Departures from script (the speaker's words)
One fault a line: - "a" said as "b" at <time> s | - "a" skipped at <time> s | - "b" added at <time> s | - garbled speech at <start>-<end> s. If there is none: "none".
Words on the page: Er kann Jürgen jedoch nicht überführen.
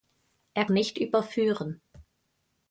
- "kann Jürgen jedoch" skipped at 0.7 s